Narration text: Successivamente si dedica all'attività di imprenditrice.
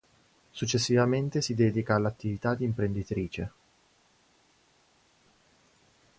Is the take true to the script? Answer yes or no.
yes